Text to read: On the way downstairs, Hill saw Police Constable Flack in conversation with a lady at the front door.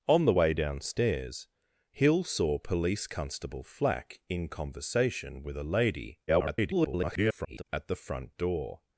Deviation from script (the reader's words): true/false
true